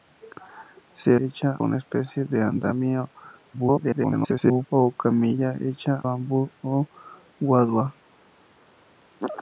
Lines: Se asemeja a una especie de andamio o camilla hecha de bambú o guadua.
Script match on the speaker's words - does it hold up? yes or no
no